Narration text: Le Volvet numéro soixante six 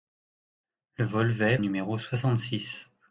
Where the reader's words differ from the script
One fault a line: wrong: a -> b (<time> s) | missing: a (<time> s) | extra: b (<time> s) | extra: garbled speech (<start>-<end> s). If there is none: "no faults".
no faults